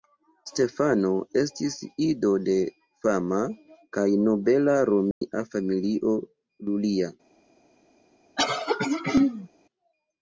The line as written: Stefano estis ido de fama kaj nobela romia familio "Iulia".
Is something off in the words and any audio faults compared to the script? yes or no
yes